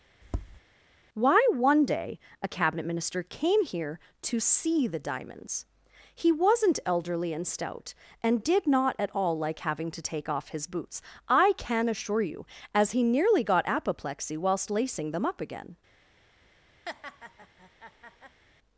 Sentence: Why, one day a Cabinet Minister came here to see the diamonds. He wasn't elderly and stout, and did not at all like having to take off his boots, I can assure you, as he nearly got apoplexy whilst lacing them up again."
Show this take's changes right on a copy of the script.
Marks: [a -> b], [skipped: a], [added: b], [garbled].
Why, one day a Cabinet Minister came here to see the diamonds. He wasn't elderly and stout, and did not at all like having to take off his boots, I can assure you, as he nearly got apoplexy whilst lacing them up again."